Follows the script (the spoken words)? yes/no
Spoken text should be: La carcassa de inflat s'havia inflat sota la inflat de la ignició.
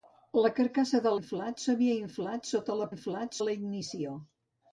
yes